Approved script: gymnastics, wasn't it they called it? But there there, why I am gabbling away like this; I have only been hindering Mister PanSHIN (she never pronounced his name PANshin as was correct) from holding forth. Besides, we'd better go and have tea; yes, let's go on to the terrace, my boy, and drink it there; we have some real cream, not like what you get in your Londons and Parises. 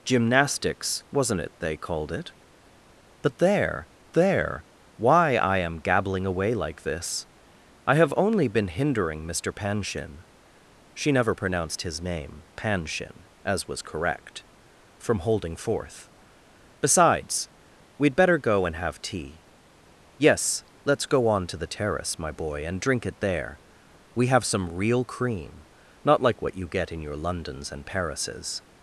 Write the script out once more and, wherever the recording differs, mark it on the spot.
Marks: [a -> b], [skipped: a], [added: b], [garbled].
gymnastics, wasn't it they called it? But there there, why I am gabbling away like this; I have only been hindering Mister PanSHIN (she never pronounced his name PANshin as was correct) from holding forth. Besides, we'd better go and have tea; yes, let's go on to the terrace, my boy, and drink it there; we have some real cream, not like what you get in your Londons and Parises.